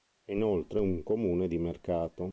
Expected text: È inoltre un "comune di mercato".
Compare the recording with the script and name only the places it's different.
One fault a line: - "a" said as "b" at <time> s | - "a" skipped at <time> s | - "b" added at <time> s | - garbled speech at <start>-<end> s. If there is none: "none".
none